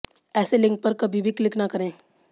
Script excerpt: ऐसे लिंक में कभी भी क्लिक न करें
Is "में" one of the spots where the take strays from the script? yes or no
yes